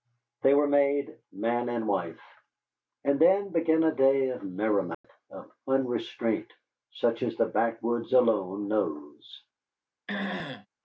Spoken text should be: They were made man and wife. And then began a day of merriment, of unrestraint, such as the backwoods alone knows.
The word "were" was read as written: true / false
true